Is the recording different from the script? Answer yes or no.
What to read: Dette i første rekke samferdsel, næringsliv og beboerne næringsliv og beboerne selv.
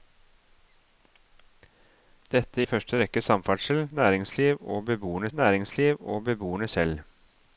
no